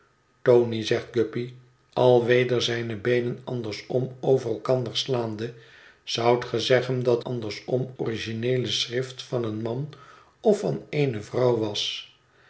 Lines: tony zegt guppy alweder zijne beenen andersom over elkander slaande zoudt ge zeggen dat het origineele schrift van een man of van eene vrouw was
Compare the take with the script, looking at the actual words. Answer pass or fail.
fail